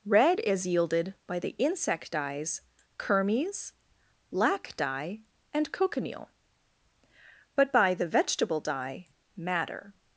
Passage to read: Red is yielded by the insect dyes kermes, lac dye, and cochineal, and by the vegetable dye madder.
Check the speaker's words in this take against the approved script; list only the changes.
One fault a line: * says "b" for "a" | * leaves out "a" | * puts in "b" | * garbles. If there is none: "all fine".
* says "but" for "and"